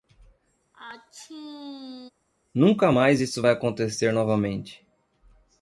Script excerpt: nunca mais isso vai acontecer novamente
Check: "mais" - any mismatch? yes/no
no